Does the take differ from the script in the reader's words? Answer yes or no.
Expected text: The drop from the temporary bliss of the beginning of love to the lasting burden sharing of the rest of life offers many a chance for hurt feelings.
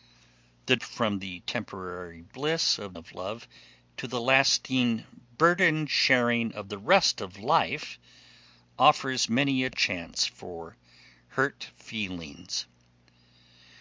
yes